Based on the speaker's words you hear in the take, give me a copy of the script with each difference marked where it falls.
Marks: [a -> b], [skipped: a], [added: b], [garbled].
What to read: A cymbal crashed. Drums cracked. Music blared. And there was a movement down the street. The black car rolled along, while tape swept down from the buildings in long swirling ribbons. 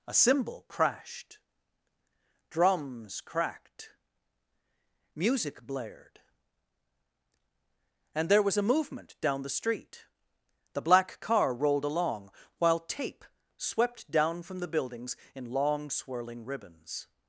A cymbal crashed. Drums cracked. Music blared. And there was a movement down the street. The black car rolled along, while tape swept down from the buildings in long swirling ribbons.